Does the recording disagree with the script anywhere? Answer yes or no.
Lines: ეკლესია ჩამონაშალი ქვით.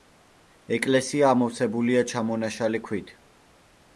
yes